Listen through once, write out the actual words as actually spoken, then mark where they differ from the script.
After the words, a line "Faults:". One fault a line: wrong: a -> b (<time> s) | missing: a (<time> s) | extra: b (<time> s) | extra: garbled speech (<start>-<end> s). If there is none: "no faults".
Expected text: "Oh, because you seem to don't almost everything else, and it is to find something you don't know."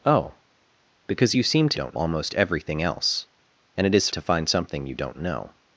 "Oh, because you seem to don't almost everything else, and it is to find something you don't know."
Faults:
no faults